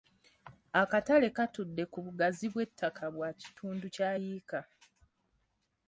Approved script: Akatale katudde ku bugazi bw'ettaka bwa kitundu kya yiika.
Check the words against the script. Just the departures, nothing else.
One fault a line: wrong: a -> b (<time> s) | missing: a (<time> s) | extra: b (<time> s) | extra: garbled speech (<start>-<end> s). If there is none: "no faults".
no faults